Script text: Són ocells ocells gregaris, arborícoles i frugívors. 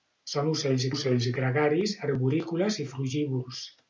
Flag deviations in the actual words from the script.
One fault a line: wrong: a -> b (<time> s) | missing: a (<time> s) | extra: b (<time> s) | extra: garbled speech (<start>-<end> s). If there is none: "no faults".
no faults